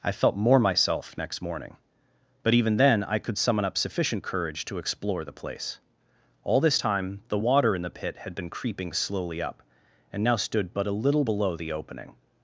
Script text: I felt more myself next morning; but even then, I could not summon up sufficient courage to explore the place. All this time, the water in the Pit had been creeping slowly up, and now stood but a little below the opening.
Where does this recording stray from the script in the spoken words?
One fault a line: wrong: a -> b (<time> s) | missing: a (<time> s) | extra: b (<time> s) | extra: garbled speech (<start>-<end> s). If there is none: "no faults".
missing: not (3.4 s)